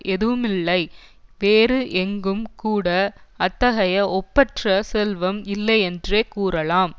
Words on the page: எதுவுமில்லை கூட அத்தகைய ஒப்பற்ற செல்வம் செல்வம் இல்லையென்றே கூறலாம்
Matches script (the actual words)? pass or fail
fail